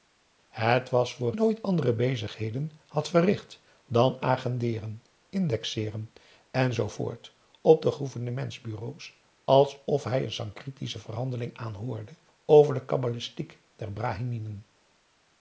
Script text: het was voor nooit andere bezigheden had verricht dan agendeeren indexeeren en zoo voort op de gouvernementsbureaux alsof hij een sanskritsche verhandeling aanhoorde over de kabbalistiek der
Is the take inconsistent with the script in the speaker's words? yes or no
no